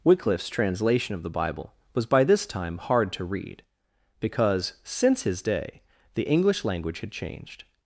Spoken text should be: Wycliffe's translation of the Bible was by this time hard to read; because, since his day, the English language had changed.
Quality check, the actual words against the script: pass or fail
pass